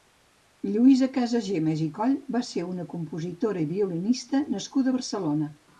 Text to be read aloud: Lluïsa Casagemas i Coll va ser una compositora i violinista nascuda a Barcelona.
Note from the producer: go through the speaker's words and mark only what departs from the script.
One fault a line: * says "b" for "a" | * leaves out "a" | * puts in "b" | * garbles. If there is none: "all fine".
all fine